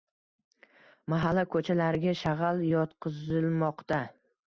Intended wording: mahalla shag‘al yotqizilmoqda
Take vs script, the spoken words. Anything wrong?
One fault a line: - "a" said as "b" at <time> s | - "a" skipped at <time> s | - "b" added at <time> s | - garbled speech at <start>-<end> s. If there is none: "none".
- "ko‘chalariga" added at 1.6 s